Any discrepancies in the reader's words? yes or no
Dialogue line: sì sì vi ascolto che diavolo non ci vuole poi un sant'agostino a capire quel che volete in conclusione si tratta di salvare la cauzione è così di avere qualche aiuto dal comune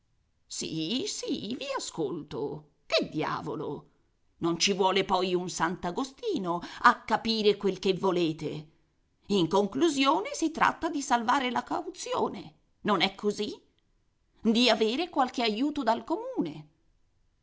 yes